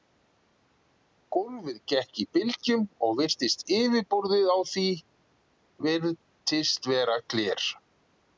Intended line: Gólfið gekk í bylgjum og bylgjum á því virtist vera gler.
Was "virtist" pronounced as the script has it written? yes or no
yes